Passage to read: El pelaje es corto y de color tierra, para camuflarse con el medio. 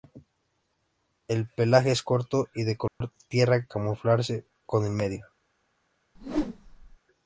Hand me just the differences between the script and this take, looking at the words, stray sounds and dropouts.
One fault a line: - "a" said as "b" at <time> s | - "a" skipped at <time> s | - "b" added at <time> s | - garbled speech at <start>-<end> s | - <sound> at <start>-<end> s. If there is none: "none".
- dropout at 2.9-3.0 s
- "para" skipped at 3.7 s
- whoosh at 6.1-7.0 s